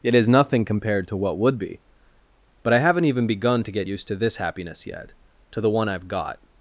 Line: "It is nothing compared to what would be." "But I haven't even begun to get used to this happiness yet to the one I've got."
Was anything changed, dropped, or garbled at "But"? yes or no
no